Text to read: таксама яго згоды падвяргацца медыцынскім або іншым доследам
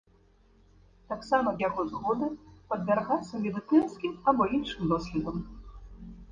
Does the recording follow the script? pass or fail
pass